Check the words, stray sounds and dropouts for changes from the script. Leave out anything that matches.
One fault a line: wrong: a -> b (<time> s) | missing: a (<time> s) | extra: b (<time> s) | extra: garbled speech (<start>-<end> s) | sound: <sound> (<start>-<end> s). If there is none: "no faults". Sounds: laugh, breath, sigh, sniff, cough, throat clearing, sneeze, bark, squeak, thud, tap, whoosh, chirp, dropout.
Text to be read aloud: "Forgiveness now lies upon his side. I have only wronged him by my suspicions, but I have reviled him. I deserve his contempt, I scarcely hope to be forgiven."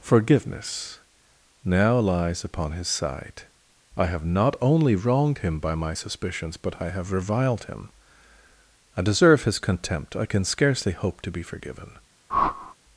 extra: not (4.2 s)
extra: can (10.2 s)
sound: whoosh (12.3-12.7 s)